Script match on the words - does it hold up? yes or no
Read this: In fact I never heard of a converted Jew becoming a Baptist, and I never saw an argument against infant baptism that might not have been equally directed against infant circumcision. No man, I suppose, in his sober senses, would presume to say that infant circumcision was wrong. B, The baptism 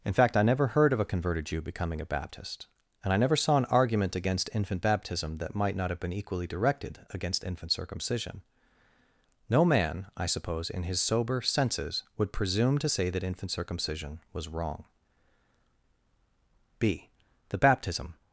yes